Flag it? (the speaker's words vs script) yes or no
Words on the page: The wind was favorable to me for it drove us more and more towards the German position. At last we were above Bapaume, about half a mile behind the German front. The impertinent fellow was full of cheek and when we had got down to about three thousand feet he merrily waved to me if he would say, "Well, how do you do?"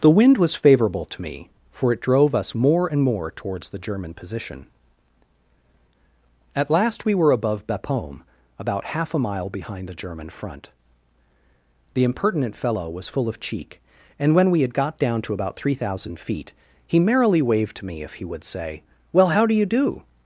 no